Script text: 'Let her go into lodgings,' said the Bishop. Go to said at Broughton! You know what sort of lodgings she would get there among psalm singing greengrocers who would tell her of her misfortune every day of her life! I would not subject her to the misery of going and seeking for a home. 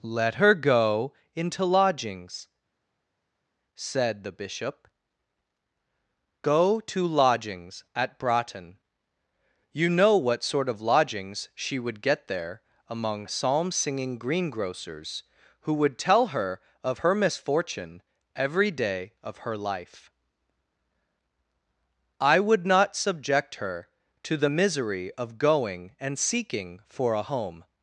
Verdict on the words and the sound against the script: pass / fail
fail